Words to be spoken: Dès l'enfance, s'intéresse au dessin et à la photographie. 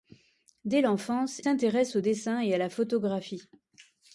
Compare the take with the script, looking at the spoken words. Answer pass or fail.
pass